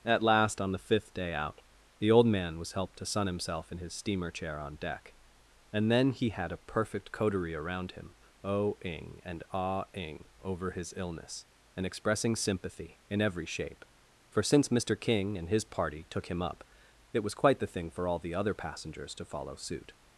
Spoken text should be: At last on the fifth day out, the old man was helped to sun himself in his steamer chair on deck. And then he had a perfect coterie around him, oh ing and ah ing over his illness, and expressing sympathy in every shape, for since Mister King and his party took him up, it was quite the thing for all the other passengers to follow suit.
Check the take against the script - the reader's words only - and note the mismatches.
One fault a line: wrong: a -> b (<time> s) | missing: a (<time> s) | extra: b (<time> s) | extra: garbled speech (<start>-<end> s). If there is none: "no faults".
no faults